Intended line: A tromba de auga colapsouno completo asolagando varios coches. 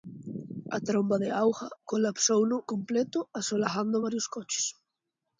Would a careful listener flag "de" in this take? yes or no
no